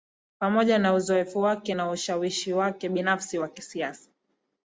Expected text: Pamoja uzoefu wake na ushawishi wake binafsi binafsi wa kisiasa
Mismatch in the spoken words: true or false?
true